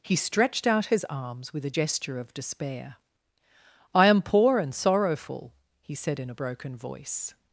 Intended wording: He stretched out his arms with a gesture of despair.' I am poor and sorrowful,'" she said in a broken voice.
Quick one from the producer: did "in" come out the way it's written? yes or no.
yes